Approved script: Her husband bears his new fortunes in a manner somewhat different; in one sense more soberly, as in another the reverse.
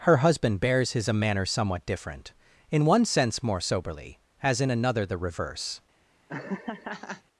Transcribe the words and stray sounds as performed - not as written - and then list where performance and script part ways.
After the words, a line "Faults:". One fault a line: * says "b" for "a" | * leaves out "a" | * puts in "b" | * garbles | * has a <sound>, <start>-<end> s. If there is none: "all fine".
Her husband bears his a manner somewhat different; in one sense more soberly, as in another the reverse.
Faults:
* leaves out "new fortunes in"
* has a laugh, 6.3-7.2 s